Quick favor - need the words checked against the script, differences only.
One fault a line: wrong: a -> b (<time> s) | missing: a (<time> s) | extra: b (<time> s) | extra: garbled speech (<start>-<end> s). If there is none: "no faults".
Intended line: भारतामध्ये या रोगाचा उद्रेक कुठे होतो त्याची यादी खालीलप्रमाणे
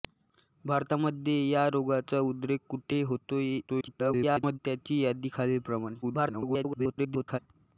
extra: garbled speech (3.7-4.6 s)
extra: garbled speech (6.0-7.4 s)